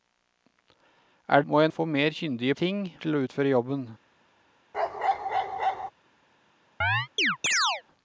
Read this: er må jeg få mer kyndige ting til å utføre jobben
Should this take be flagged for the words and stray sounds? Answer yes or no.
yes